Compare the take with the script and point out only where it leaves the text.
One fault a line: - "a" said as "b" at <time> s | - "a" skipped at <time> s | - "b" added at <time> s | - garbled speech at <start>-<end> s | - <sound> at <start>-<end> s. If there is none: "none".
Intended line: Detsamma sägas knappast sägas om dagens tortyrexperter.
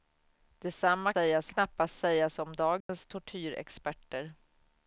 - dropout at 2.8-2.9 s